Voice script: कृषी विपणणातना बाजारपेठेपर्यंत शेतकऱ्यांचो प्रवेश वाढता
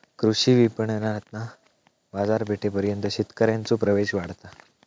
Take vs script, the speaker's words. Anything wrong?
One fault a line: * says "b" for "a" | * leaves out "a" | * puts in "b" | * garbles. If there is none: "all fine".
all fine